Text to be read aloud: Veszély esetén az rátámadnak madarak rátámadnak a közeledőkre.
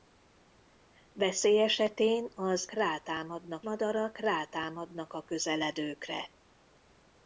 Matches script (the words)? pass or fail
pass